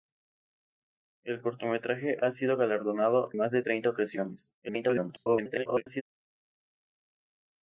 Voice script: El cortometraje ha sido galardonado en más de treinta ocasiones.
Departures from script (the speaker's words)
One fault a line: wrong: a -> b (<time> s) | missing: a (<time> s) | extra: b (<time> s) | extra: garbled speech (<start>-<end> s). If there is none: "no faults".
missing: en (3.3 s)
extra: garbled speech (4.6-6.0 s)